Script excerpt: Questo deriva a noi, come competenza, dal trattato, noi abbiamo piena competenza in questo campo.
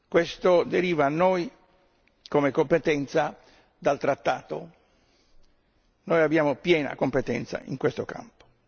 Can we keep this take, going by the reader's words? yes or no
yes